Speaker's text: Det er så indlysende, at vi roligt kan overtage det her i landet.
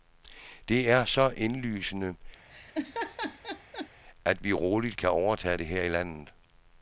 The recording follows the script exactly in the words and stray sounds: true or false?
false